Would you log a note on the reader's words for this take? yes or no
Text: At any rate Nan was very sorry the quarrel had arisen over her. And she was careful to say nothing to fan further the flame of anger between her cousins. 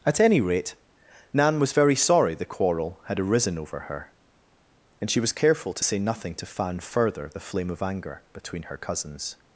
no